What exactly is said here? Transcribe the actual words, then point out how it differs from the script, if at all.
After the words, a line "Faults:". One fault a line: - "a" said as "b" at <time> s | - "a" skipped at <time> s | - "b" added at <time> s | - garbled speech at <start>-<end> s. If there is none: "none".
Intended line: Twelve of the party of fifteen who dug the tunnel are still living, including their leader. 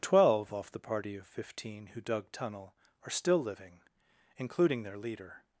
Twelve off the party of fifteen who dug tunnel are still living, including their leader.
Faults:
- "of" said as "off" at 0.5 s
- "the" skipped at 2.3 s